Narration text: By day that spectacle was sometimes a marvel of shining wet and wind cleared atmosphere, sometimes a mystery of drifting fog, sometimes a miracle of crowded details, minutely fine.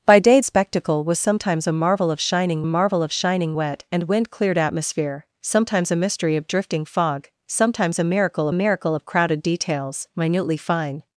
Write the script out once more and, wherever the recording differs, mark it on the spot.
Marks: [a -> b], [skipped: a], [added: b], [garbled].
By day [skipped: that] spectacle was sometimes a marvel of shining [added: marvel of shining] wet and wind cleared atmosphere, sometimes a mystery of drifting fog, sometimes a miracle [added: miracle] of crowded details, minutely fine.